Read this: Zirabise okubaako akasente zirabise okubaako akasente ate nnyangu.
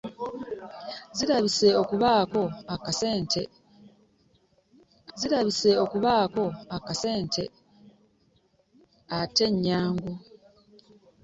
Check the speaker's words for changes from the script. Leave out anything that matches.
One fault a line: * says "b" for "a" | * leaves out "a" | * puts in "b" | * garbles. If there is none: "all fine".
all fine